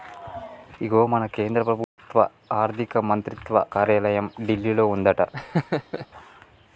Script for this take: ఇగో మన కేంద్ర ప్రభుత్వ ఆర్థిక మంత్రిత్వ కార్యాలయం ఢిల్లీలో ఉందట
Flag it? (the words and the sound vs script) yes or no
yes